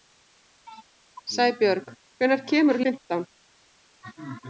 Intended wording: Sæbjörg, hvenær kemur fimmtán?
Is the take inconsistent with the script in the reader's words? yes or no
no